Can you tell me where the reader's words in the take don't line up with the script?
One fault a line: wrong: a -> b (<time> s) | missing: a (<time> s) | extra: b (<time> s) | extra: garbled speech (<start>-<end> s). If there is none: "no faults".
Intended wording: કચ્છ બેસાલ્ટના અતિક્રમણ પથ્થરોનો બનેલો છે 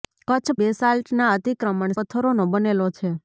no faults